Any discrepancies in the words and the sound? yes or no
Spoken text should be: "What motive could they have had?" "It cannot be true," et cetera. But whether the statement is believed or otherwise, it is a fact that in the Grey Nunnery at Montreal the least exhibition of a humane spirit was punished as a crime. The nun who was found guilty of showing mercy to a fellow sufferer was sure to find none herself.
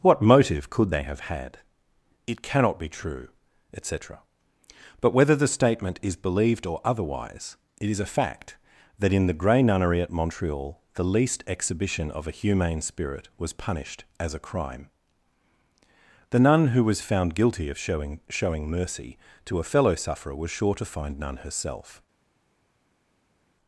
yes